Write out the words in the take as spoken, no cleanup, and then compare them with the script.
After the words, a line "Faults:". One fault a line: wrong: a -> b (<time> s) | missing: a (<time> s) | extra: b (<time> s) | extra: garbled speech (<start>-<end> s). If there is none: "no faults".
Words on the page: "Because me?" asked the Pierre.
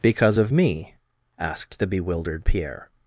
"Because of me?" asked the bewildered Pierre.
Faults:
extra: of (0.4 s)
extra: bewildered (1.9 s)